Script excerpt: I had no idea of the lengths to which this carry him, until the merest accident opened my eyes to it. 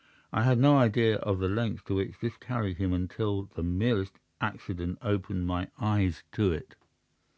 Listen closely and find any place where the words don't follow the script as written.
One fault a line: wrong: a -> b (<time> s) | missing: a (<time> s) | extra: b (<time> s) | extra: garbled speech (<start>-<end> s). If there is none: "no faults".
no faults